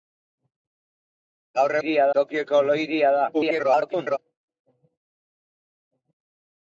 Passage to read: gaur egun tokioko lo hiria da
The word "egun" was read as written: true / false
false